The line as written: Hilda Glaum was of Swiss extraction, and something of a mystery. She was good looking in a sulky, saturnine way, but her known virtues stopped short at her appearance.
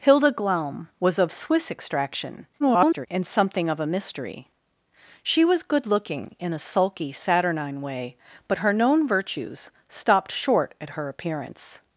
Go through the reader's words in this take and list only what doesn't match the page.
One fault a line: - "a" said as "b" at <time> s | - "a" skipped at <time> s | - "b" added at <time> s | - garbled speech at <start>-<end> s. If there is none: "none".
- garbled speech at 2.6-3.1 s